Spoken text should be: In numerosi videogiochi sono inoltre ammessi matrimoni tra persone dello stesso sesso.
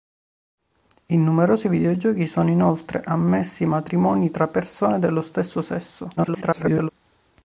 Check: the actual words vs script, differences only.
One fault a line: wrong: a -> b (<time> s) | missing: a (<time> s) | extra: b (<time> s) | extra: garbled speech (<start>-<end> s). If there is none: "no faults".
extra: garbled speech (6.2-6.9 s)